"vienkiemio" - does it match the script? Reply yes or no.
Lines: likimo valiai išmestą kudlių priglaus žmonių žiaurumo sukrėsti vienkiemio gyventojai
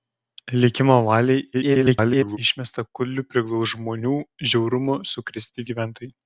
no